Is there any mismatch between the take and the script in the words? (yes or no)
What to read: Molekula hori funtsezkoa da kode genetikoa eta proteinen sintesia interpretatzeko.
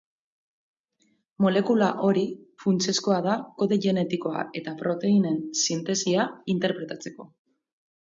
no